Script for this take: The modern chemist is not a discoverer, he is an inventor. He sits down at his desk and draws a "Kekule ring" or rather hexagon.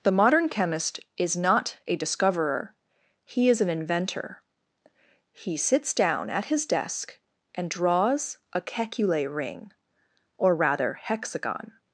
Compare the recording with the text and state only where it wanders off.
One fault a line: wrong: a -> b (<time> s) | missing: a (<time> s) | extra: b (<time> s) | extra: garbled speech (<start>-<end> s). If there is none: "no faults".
no faults